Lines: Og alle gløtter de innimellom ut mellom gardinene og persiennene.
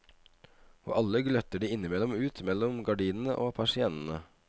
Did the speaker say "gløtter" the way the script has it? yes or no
yes